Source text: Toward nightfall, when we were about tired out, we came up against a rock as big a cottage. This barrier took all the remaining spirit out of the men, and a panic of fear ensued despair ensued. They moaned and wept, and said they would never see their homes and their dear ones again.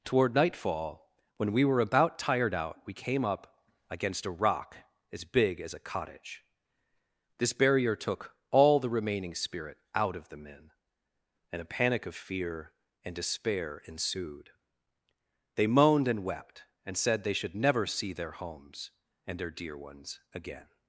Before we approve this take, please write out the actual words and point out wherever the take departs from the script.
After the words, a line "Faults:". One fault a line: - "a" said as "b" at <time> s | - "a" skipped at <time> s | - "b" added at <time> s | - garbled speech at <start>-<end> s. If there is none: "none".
Toward nightfall, when we were about tired out, we came up against a rock as big as a cottage. This barrier took all the remaining spirit out of the men, and a panic of fear and despair ensued. They moaned and wept, and said they should never see their homes and their dear ones again.
Faults:
- "as" added at 5.6 s
- "ensued" said as "and" at 13.0 s
- "would" said as "should" at 17.3 s